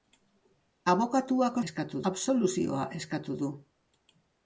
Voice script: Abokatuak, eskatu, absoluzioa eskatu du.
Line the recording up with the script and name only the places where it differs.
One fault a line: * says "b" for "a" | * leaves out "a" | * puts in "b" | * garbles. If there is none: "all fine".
all fine